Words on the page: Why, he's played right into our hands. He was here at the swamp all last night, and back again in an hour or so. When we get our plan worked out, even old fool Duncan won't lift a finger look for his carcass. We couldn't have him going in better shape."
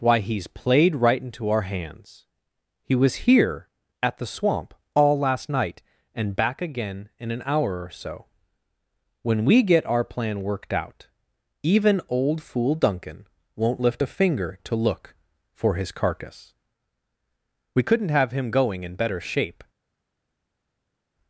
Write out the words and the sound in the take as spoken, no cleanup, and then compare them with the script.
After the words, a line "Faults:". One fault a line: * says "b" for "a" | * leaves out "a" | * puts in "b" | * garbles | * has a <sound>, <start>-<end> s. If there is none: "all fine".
Why, he's played right into our hands. He was here at the swamp all last night, and back again in an hour or so. When we get our plan worked out, even old fool Duncan won't lift a finger to look for his carcass. We couldn't have him going in better shape."
Faults:
* puts in "to"